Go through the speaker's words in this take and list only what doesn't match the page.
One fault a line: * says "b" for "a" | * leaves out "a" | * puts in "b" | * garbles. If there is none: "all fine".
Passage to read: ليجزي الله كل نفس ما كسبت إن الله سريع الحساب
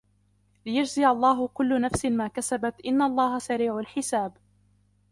all fine